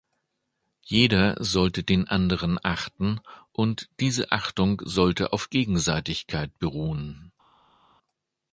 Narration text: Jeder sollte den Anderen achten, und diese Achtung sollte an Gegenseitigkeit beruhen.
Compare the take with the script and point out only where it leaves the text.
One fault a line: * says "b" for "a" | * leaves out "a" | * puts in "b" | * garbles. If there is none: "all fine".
* says "auf" for "an"